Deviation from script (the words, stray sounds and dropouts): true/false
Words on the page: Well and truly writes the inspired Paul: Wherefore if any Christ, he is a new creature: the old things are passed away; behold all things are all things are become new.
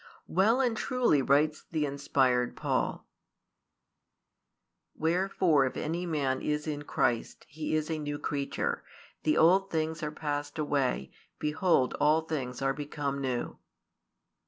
true